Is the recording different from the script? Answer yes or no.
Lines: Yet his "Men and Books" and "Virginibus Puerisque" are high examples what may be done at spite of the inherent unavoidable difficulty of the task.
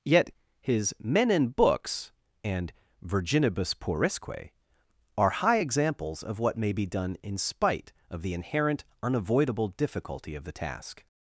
yes